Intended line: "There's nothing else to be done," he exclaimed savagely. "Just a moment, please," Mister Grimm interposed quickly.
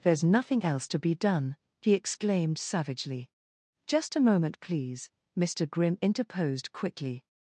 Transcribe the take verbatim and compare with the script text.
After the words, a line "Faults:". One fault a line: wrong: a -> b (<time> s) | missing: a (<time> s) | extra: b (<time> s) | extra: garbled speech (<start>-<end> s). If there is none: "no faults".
"There's nothing else to be done," he exclaimed savagely. "Just a moment, please," Mister Grimm interposed quickly.
Faults:
no faults